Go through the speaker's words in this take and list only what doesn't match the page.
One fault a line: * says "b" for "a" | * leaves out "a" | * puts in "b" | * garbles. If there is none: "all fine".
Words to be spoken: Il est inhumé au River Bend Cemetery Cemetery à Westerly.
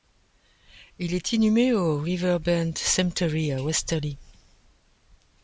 * leaves out "Cemetery"